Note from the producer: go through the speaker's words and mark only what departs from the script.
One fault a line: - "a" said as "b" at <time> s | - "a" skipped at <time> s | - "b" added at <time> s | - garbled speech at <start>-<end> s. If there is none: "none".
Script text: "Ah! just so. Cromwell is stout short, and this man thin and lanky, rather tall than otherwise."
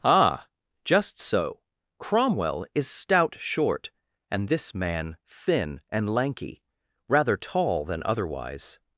none